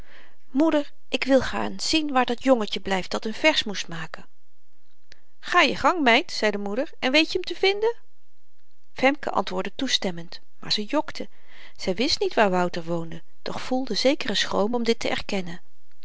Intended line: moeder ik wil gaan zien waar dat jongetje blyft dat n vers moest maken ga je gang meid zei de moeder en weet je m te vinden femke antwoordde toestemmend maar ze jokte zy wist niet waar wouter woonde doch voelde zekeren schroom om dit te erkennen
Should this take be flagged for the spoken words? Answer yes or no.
no